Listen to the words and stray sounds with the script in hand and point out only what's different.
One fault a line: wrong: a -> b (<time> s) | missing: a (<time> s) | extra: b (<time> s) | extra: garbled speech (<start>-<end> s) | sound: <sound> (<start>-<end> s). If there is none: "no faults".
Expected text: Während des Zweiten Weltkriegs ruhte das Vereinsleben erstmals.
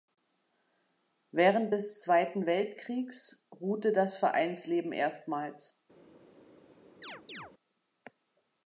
sound: chirp (7.0-7.5 s)